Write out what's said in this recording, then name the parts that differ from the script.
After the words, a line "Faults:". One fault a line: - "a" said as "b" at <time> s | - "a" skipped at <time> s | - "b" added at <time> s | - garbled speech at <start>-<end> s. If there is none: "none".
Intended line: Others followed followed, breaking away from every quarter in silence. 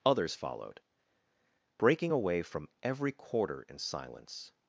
Others followed, breaking away from every quarter in silence.
Faults:
- "followed" skipped at 0.8 s